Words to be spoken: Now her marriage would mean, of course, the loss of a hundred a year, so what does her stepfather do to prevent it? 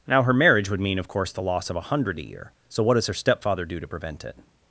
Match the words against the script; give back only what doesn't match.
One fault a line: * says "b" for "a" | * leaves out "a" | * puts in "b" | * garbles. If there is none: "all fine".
all fine